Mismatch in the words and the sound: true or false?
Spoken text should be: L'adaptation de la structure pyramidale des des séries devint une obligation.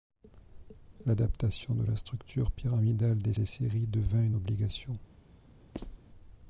true